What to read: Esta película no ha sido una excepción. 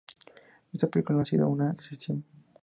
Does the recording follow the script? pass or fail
pass